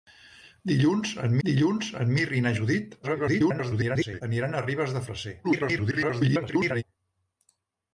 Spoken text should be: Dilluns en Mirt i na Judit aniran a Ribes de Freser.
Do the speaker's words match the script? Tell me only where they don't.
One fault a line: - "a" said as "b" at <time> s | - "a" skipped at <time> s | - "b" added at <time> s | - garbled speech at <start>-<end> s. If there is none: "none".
- "dilluns en" added at 1.5 s
- garbled speech at 3.0-4.2 s
- garbled speech at 5.4-6.8 s